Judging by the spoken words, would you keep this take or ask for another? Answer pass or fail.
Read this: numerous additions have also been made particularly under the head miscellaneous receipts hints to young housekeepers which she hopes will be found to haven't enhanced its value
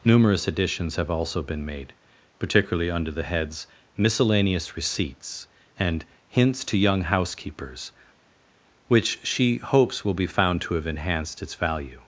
fail